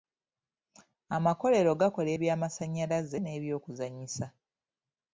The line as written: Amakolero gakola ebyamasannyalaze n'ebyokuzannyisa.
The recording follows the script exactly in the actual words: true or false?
true